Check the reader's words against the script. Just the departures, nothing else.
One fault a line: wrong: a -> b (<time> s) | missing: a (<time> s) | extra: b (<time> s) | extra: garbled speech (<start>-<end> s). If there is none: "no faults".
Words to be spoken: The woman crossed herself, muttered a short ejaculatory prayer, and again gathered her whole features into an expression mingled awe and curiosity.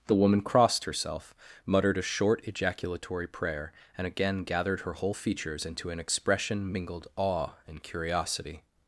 no faults